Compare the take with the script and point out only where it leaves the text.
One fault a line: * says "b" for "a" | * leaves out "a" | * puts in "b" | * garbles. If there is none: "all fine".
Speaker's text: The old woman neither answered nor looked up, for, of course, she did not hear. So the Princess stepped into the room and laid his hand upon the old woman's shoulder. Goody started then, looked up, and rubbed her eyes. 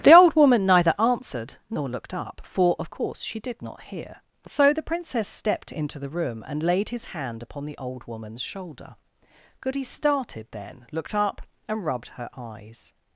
all fine